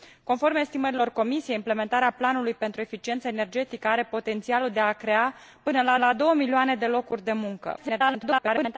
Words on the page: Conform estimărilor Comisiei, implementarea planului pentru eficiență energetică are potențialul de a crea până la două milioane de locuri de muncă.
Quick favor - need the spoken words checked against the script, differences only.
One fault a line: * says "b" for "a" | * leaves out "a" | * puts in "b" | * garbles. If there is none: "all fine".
* puts in "la"
* garbles